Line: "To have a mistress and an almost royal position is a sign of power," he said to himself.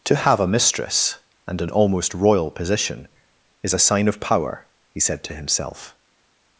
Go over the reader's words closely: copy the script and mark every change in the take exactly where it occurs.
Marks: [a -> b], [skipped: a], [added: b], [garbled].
"To have a mistress and an almost royal position is a sign of power," he said to himself.